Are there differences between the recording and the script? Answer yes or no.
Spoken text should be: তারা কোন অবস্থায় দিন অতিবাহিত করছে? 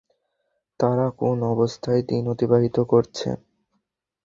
no